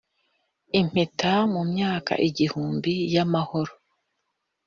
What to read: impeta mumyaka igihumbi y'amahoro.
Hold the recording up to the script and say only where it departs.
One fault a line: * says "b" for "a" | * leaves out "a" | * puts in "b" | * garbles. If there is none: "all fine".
all fine